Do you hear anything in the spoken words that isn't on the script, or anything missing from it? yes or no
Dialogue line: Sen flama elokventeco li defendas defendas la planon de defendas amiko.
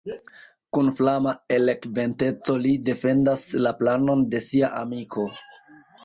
yes